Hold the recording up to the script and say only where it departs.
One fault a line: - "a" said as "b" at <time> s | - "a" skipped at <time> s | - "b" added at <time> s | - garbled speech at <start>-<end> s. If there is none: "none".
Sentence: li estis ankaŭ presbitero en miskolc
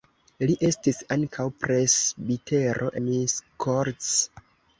- "en" skipped at 2.9 s